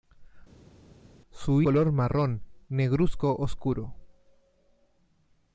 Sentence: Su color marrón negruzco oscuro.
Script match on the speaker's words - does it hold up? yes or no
yes